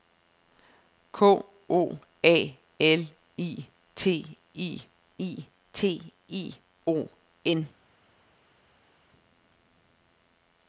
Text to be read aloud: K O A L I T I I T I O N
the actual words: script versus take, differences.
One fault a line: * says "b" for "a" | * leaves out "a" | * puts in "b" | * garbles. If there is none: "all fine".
all fine